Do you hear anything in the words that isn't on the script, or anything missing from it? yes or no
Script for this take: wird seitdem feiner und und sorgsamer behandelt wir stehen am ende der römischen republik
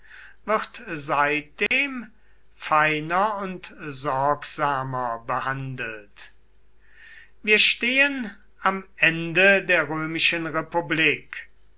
yes